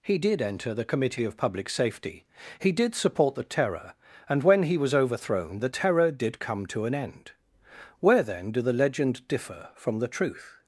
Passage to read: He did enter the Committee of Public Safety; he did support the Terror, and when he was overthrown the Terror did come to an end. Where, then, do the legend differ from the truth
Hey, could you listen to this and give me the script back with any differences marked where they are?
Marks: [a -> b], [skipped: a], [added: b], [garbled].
He did enter the Committee of Public Safety; he did support the Terror, and when he was overthrown the Terror did come to an end. Where, then, do the legend differ from the truth